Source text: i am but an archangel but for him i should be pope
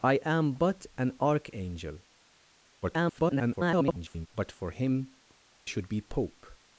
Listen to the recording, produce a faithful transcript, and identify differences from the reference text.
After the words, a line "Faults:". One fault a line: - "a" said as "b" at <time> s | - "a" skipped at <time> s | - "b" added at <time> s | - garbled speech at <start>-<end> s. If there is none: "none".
i am but an archangel [garbled] but for him should be pope
Faults:
- garbled speech at 2.8-4.3 s
- "i" skipped at 5.1 s